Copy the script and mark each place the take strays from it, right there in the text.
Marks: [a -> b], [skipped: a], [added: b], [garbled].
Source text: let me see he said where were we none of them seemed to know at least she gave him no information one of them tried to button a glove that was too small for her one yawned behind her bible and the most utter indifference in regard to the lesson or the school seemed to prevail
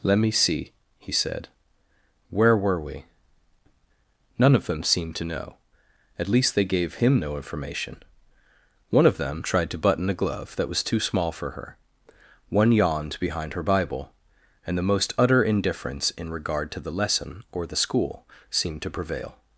let me see he said where were we none of them seemed to know at least [she -> they] gave him no information one of them tried to button a glove that was too small for her one yawned behind her bible and the most utter indifference in regard to the lesson or the school seemed to prevail